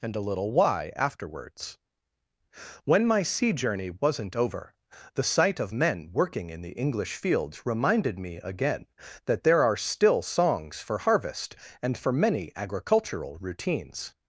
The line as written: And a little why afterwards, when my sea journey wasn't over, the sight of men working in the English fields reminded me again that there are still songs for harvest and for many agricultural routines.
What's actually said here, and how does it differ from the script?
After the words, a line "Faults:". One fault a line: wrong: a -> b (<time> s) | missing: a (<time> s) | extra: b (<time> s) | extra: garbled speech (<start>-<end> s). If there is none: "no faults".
And a little why afterwards, when my sea journey wasn't over, the sight of men working in the English fields reminded me again that there are still songs for harvest and for many agricultural routines.
Faults:
no faults